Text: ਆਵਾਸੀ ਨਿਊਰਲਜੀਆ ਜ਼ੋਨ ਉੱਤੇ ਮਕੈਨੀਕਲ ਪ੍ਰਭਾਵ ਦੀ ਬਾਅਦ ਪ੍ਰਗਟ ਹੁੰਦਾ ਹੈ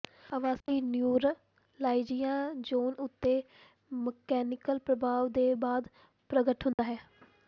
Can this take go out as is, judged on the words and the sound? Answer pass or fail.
fail